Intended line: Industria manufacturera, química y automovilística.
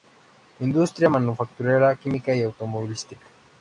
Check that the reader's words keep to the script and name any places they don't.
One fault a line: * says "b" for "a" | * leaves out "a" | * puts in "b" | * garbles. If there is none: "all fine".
all fine